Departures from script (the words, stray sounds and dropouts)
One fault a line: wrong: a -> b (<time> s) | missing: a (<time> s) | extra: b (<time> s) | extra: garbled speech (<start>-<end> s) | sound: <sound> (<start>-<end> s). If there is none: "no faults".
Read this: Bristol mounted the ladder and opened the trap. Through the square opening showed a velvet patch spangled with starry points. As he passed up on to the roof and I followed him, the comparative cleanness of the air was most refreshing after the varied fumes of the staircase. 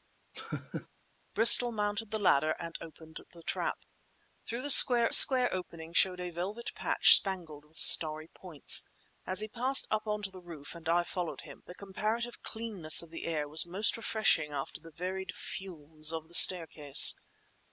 sound: laugh (0.3-0.9 s)
extra: square (5.1 s)